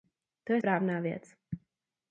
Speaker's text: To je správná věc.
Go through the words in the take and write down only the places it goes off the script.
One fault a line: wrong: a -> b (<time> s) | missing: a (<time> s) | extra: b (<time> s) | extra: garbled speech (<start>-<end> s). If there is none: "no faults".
no faults